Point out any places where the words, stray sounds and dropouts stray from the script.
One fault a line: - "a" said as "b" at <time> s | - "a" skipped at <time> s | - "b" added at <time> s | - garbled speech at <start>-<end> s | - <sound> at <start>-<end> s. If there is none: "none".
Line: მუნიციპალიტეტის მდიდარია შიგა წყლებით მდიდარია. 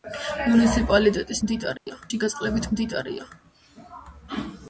- dropout at 1.8-1.9 s